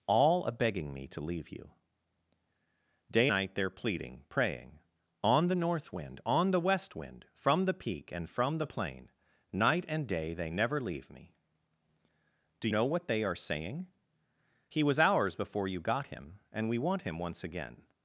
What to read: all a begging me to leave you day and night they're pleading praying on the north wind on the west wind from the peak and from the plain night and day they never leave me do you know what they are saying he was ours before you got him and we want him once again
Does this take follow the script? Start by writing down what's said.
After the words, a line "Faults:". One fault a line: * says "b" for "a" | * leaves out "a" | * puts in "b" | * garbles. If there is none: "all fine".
all a begging me to leave you day night they're pleading praying on the north wind on the west wind from the peak and from the plain night and day they never leave me do know what they are saying he was ours before you got him and we want him once again
Faults:
* leaves out "and"
* leaves out "you"